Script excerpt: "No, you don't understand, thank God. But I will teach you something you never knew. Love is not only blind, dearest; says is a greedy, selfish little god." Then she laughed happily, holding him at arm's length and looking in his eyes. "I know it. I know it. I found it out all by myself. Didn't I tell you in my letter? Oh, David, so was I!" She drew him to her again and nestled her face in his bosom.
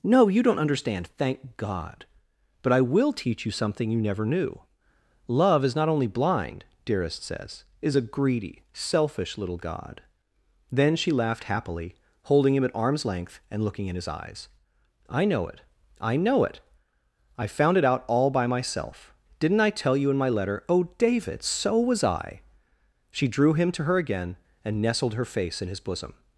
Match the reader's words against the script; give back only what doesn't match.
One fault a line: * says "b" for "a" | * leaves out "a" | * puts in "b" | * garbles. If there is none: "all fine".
all fine